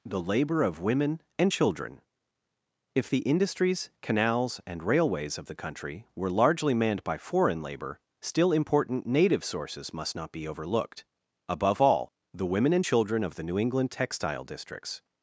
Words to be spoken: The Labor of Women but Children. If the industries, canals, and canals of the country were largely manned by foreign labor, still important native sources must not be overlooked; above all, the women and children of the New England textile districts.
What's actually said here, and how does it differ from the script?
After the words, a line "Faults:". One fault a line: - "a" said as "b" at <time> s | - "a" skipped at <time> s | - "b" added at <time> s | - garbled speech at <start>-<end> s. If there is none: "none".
The Labor of Women and Children. If the industries, canals, and railways of the country were largely manned by foreign labor, still important native sources must not be overlooked; above all, the women and children of the New England textile districts.
Faults:
- "but" said as "and" at 1.4 s
- "canals" said as "railways" at 4.8 s